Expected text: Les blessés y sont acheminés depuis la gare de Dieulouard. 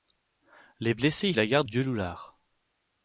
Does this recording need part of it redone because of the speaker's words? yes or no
yes